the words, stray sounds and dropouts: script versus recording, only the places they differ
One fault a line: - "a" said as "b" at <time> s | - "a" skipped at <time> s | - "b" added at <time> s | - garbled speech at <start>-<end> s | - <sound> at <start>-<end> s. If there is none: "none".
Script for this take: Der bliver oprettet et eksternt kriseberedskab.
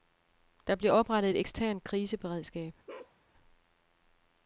- bark at 2.9-3.2 s